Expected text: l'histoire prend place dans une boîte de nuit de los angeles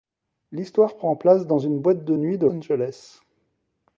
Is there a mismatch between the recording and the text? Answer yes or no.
yes